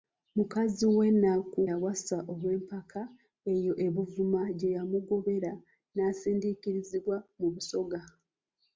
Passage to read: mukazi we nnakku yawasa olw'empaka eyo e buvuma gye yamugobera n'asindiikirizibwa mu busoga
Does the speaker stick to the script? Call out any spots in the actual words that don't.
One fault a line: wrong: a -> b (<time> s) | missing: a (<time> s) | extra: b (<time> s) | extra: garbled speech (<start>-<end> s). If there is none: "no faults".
no faults